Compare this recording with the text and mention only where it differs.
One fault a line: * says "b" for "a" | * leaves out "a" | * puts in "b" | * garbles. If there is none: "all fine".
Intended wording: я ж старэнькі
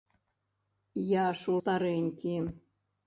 all fine